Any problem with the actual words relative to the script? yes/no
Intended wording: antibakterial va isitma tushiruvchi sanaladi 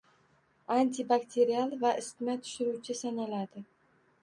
no